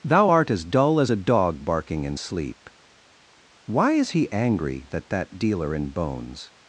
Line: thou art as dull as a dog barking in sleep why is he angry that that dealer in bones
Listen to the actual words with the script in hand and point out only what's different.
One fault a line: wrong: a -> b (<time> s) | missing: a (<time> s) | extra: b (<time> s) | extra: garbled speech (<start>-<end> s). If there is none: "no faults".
no faults